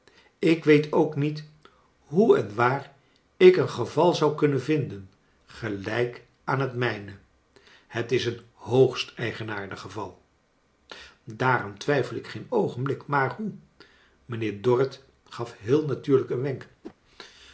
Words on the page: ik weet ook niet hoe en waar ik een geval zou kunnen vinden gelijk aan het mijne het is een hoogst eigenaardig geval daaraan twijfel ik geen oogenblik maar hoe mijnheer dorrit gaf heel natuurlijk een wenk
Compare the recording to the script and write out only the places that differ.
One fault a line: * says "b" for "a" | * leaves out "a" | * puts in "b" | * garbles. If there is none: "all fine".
all fine